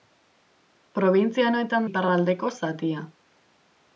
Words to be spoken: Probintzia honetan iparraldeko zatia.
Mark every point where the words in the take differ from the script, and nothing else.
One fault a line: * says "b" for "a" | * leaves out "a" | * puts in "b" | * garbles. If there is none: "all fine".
all fine